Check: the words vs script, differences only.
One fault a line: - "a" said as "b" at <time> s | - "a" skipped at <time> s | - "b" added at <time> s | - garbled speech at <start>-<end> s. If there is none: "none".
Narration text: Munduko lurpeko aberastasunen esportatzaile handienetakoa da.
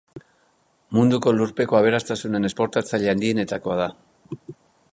none